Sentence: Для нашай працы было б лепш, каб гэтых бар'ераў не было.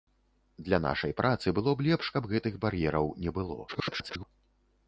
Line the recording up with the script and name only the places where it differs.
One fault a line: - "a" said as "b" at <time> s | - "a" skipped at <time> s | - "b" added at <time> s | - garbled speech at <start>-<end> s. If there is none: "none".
- garbled speech at 3.7-4.2 s